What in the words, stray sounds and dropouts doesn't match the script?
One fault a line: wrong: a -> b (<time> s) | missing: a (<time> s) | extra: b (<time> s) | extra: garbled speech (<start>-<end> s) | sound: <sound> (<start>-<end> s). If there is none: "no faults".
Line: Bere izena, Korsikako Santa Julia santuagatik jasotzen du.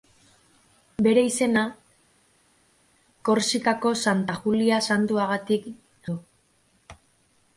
missing: jasotzen (5.7 s)